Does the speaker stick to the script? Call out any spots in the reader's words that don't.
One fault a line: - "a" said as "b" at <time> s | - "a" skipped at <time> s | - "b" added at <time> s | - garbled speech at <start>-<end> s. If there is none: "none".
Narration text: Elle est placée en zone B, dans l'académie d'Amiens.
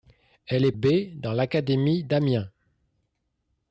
- "placée en zone" skipped at 0.7 s